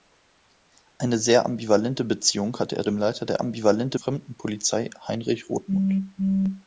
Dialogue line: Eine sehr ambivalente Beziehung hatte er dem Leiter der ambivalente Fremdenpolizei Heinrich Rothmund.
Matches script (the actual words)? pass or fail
pass